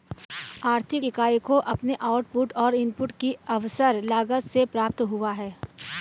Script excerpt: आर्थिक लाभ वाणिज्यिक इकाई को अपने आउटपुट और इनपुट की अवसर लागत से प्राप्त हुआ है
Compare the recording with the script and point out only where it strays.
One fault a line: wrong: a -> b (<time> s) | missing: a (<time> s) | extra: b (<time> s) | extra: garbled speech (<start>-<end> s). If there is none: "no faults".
missing: लाभ वाणिज्यिक (1.0 s)